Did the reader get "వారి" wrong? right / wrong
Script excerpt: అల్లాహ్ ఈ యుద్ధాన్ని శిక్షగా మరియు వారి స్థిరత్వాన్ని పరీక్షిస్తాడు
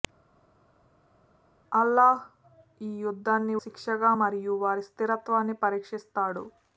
right